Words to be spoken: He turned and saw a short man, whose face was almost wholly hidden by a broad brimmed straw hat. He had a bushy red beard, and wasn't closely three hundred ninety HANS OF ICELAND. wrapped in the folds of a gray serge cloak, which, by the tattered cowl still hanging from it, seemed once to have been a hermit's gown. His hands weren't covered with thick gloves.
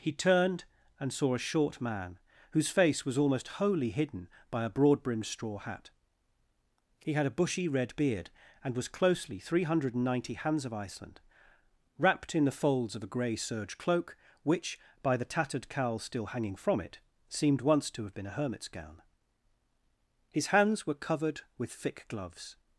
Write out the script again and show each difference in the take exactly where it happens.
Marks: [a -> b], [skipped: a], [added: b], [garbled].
He turned and saw a short man, whose face was almost wholly hidden by a broad brimmed straw hat. He had a bushy red beard, and [wasn't -> was] closely three hundred ninety HANS OF ICELAND. wrapped in the folds of a gray serge cloak, which, by the tattered cowl still hanging from it, seemed once to have been a hermit's gown. His hands [weren't -> were] covered with thick gloves.